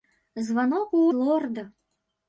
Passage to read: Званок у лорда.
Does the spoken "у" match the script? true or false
true